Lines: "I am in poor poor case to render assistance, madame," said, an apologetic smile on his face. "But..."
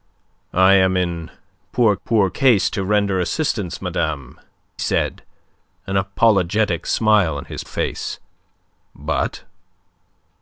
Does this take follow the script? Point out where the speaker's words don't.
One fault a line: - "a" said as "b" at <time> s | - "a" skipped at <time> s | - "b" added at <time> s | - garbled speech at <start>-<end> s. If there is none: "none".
none